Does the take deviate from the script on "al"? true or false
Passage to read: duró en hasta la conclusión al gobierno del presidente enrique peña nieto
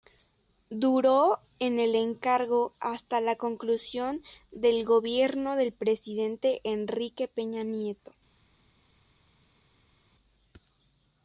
true